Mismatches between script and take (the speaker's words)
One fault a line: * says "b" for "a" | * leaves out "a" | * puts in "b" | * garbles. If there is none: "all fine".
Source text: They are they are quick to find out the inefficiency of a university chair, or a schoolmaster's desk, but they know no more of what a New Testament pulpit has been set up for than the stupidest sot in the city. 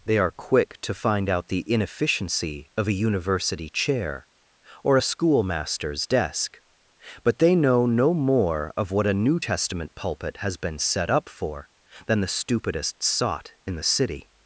* leaves out "they are"